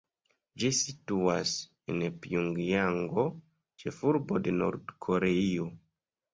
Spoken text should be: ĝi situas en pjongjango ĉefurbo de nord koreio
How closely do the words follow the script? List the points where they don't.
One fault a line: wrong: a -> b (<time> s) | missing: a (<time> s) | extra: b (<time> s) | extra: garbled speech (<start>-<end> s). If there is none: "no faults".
no faults